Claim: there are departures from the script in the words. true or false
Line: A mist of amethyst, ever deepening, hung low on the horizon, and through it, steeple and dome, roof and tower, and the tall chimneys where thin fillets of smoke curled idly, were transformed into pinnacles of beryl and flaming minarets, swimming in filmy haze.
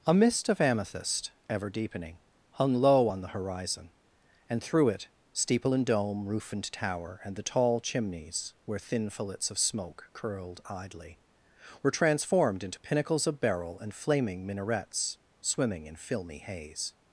false